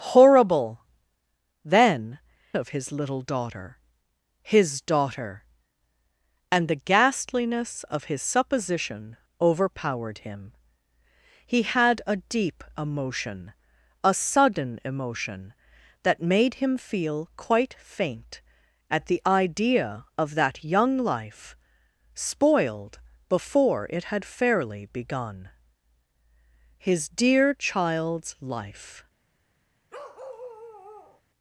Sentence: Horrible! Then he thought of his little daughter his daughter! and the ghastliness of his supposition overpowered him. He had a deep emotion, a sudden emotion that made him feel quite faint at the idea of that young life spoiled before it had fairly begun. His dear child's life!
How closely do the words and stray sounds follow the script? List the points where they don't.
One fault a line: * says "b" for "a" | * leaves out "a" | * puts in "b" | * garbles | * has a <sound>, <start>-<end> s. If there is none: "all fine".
* leaves out "he thought"
* has a bark, 29.9-31.2 s